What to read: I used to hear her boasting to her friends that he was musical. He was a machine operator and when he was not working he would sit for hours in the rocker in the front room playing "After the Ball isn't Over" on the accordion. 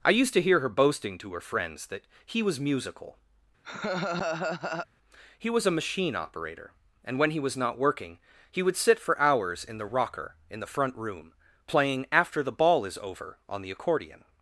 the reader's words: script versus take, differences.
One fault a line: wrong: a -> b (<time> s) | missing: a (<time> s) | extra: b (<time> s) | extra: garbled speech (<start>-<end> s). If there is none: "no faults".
wrong: isn't -> is (12.8 s)